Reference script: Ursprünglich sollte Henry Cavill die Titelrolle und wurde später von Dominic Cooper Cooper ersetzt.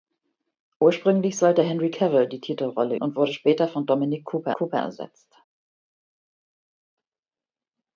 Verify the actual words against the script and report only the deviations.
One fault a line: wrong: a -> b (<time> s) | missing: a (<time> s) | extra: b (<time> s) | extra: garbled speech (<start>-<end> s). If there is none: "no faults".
no faults